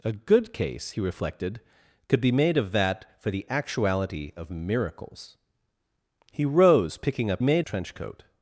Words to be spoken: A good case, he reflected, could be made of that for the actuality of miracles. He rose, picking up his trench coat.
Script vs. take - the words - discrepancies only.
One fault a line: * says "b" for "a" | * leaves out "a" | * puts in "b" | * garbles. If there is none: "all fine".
* says "made" for "his"